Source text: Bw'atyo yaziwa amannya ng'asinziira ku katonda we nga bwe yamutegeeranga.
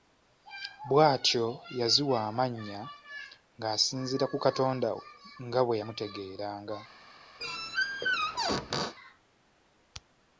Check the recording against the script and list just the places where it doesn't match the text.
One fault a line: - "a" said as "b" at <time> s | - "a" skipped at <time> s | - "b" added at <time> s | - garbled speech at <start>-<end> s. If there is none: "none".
none